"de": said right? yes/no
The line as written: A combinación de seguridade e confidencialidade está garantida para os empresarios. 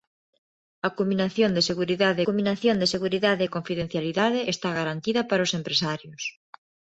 yes